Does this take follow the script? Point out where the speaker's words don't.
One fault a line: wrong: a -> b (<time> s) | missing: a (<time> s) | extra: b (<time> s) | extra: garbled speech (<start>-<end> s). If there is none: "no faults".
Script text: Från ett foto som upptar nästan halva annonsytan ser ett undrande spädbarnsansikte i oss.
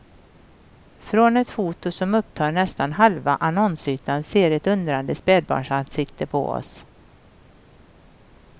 wrong: i -> på (6.3 s)